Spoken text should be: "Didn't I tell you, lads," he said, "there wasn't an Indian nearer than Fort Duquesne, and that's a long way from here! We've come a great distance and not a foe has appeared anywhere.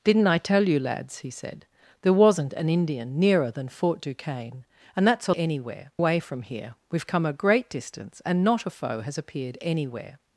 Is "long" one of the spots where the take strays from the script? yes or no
yes